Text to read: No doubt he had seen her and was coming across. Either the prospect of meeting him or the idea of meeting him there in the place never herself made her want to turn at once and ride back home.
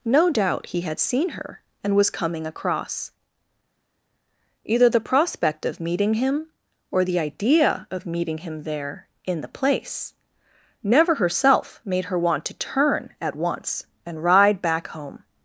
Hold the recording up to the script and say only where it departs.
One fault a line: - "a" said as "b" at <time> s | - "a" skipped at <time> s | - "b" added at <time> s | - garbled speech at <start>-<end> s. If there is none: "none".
none